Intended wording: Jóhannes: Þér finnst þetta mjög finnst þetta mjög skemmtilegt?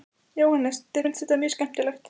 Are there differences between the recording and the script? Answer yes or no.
yes